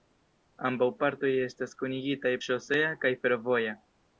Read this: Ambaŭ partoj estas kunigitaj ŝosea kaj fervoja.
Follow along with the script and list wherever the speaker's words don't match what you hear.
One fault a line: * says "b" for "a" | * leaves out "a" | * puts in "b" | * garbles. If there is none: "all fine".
all fine